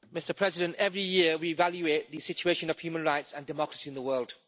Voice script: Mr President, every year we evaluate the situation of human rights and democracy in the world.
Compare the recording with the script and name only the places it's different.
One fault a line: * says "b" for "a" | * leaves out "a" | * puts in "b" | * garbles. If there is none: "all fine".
all fine